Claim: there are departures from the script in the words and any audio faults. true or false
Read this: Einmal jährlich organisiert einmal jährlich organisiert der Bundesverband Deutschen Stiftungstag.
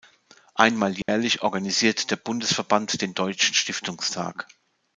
true